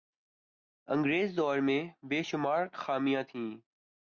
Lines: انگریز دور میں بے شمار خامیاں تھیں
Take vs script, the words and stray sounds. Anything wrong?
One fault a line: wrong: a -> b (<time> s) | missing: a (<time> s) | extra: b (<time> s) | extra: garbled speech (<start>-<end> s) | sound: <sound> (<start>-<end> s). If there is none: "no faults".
no faults